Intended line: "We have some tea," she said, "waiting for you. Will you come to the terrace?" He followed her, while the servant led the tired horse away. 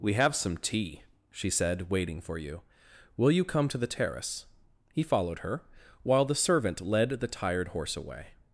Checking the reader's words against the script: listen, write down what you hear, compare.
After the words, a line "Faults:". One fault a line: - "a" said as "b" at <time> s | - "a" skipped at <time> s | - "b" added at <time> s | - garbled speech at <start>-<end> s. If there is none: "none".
"We have some tea," she said, "waiting for you. Will you come to the terrace?" He followed her, while the servant led the tired horse away.
Faults:
none